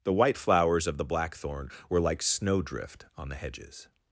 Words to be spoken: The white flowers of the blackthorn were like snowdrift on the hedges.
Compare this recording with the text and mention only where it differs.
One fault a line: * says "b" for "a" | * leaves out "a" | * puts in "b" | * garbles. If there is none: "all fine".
all fine